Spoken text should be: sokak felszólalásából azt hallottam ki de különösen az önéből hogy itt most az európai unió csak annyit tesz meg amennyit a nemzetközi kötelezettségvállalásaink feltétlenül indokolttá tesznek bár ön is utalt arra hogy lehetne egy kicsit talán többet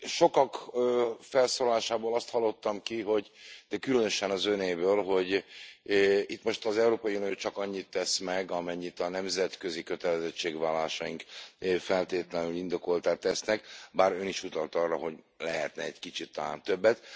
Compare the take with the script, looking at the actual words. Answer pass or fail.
pass